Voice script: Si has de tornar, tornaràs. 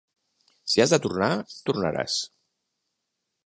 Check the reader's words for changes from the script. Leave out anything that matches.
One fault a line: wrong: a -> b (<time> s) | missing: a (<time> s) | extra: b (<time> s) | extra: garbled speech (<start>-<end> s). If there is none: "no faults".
no faults